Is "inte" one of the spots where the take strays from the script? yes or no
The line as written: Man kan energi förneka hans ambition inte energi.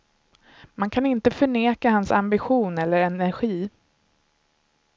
yes